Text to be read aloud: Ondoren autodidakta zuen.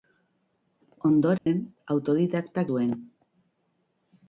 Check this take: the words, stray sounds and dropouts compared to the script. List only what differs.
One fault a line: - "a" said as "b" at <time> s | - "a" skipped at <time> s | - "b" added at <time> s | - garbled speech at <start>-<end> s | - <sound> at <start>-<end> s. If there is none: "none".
- dropout at 1.4-1.5 s